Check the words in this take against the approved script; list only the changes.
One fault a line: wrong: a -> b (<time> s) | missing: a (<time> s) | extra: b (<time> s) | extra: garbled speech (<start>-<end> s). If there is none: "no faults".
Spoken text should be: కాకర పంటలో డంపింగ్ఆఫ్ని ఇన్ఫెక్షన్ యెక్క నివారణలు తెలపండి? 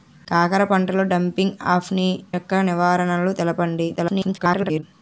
missing: ఇన్ఫెక్షన్ (2.1 s)
extra: garbled speech (4.0-4.8 s)